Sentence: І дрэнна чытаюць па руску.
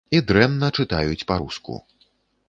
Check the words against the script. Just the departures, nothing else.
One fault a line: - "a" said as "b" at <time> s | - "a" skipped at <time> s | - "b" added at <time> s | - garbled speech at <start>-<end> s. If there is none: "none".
none